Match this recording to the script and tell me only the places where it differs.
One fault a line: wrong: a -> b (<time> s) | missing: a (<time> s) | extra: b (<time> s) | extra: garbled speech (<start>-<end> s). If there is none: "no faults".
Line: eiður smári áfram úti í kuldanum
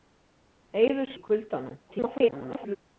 missing: smári áfram úti (1.1 s)
extra: garbled speech (1.9-2.8 s)